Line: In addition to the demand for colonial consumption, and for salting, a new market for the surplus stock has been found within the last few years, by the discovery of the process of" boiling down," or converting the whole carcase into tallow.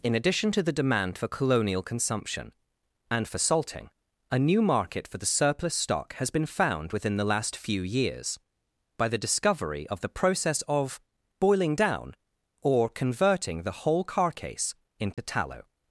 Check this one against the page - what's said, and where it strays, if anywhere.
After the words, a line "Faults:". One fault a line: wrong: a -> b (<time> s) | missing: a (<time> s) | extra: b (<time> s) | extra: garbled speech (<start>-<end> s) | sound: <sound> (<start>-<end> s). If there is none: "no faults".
In addition to the demand for colonial consumption, and for salting, a new market for the surplus stock has been found within the last few years, by the discovery of the process of" boiling down," or converting the whole carcase into tallow.
Faults:
sound: dropout (15.1-15.2 s)